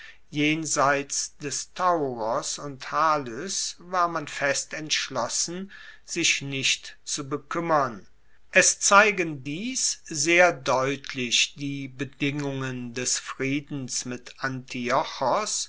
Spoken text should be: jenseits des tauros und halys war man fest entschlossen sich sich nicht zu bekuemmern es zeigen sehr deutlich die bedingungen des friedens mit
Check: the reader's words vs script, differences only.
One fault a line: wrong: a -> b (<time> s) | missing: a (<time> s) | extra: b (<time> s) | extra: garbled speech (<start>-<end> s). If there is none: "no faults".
missing: sich (6.4 s)
extra: dies (9.4 s)